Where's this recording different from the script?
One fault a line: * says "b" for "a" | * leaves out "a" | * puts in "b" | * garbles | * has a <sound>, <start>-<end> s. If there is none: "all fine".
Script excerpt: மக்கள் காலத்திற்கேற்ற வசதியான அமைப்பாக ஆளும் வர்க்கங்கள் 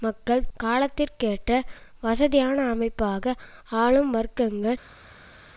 all fine